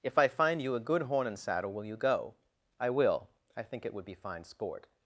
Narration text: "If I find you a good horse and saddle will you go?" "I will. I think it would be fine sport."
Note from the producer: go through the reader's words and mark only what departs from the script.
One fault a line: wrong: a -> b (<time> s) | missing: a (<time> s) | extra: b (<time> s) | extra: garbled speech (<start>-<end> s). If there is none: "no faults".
wrong: horse -> horn (1.0 s)